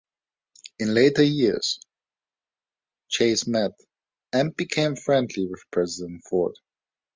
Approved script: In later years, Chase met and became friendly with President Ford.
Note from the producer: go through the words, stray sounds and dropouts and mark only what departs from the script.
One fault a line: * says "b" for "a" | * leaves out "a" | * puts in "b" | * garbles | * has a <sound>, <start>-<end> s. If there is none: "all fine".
all fine